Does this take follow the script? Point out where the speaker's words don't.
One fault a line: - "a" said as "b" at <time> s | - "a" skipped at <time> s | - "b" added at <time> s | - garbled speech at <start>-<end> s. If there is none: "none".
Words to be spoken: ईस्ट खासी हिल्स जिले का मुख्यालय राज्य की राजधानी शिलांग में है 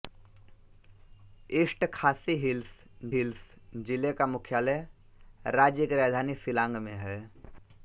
- "हिल्स" added at 3.1 s